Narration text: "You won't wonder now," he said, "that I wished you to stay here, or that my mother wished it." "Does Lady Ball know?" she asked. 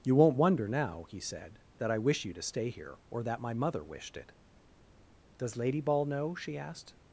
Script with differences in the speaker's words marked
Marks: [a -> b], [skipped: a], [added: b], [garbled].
"You won't wonder now," he said, "that I [wished -> wish] you to stay here, or that my mother wished it." "Does Lady Ball know?" she asked.